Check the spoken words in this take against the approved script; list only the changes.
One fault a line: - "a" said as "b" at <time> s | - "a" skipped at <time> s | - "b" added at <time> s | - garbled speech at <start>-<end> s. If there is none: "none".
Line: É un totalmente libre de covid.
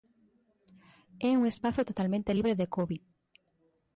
- "espazo" added at 1.5 s